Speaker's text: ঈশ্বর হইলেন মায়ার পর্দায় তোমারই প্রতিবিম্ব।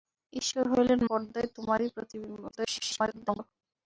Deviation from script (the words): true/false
true